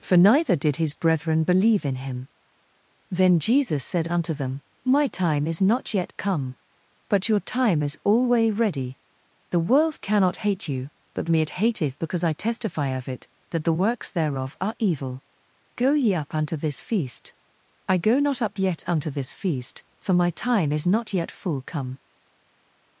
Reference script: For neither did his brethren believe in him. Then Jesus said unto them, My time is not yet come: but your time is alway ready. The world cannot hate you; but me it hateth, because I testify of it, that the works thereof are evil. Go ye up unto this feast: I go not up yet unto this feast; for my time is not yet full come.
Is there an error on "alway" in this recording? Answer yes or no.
no